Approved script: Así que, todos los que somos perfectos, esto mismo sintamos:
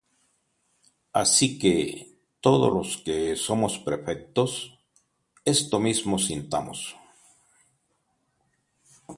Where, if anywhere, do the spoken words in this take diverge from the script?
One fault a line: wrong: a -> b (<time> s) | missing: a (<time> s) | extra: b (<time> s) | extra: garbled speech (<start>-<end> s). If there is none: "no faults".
no faults